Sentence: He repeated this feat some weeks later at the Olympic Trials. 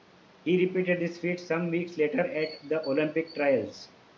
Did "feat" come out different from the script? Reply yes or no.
no